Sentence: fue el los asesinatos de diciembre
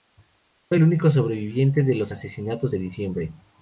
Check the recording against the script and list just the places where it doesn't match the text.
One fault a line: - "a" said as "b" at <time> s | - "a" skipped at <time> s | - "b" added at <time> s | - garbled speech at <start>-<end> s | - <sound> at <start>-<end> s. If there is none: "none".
- "único sobreviviente de" added at 0.8 s